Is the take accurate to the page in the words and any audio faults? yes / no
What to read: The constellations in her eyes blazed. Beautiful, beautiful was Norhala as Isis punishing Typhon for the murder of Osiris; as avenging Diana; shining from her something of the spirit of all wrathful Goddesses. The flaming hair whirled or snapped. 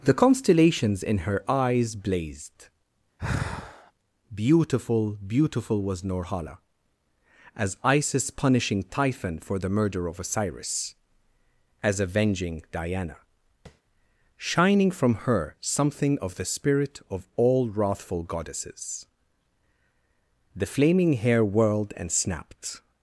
no